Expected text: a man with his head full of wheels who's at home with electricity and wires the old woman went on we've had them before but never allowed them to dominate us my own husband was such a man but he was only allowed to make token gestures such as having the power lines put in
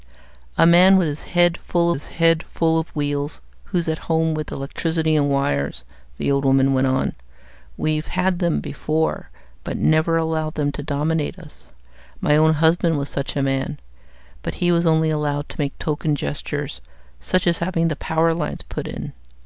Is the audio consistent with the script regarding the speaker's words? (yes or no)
no